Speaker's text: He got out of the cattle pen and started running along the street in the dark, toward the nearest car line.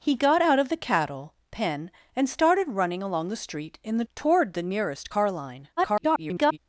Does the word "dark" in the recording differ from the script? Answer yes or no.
yes